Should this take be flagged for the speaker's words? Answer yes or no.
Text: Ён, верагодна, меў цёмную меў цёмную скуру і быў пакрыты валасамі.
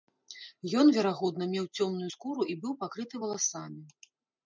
yes